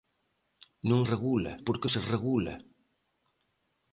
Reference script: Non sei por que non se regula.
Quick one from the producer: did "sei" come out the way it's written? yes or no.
no